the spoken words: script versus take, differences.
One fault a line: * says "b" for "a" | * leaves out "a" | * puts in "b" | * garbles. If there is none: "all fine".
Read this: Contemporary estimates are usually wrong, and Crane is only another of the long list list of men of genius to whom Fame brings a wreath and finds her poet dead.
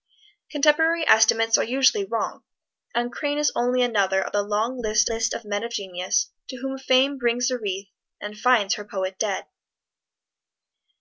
all fine